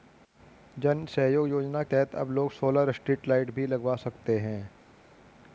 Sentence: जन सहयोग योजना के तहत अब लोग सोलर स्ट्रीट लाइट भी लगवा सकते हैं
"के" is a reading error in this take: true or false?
true